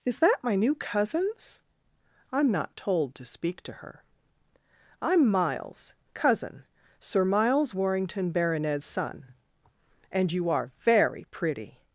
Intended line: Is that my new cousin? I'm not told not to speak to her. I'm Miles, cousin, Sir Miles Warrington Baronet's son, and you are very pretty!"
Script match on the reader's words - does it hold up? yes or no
no